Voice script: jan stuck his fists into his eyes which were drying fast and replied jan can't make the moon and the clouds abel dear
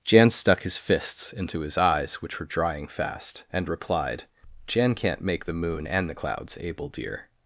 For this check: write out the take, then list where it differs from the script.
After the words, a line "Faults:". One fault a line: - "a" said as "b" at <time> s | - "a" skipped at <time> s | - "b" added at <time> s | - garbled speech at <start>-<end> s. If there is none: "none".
jan stuck his fists into his eyes which were drying fast and replied jan can't make the moon and the clouds abel dear
Faults:
none